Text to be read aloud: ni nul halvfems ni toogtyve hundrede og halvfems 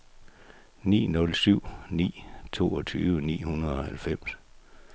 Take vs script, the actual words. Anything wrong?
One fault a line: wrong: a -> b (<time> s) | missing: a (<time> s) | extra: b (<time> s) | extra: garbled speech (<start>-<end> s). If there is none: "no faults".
wrong: halvfems -> syv (1.4 s)
extra: ni (3.2 s)